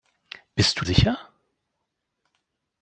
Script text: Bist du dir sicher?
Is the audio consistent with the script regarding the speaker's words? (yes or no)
no